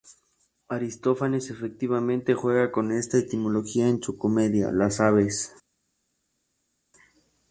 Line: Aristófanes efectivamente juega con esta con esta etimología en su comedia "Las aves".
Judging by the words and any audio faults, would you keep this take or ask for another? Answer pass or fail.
fail